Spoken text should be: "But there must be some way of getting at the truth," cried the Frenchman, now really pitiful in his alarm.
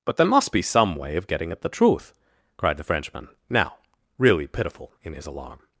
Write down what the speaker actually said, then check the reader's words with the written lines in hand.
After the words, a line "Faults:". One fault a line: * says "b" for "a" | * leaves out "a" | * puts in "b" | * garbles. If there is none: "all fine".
"But there must be some way of getting at the truth," cried the Frenchman, now really pitiful in his alarm.
Faults:
all fine